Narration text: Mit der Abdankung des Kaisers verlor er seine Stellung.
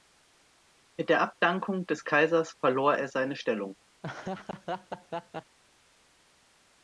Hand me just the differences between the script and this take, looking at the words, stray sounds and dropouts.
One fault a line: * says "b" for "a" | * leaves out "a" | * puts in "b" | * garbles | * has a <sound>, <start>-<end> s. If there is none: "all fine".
* has a laugh, 4.0-5.6 s